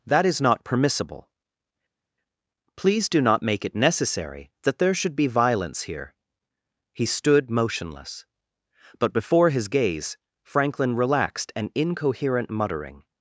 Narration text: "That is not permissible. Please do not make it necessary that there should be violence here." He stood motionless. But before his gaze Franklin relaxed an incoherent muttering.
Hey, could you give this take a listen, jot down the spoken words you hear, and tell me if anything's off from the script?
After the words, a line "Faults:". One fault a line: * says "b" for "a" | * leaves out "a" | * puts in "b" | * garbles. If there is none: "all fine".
"That is not permissible. Please do not make it necessary that there should be violence here." He stood motionless. But before his gaze Franklin relaxed an incoherent muttering.
Faults:
all fine